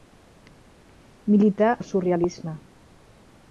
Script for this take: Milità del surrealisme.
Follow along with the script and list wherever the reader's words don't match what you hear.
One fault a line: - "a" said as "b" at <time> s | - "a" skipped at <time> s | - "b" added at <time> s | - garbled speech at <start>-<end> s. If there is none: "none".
none